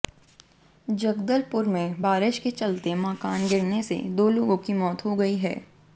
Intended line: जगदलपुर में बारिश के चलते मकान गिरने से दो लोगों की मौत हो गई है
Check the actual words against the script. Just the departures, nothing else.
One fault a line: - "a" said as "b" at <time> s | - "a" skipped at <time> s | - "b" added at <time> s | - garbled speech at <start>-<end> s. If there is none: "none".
none